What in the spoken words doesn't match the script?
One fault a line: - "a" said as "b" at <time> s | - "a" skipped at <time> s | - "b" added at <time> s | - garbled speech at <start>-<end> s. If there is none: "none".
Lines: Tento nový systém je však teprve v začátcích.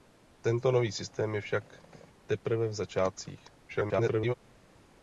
- garbled speech at 3.7-4.3 s